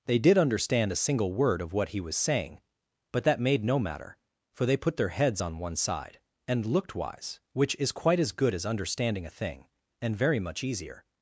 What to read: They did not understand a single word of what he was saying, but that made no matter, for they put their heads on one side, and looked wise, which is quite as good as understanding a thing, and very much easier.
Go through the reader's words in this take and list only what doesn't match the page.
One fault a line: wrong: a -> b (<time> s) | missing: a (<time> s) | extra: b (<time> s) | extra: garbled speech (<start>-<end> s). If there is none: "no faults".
missing: not (0.4 s)